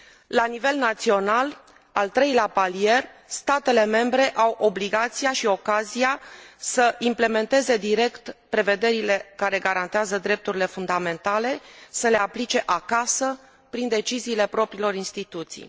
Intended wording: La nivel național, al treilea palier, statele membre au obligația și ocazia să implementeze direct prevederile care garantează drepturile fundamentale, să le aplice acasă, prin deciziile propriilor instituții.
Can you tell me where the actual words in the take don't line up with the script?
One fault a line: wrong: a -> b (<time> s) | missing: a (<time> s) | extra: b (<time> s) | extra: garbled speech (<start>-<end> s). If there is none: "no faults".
no faults